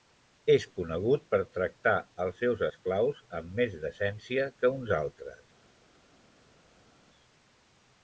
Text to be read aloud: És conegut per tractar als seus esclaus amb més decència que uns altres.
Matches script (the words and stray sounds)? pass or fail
pass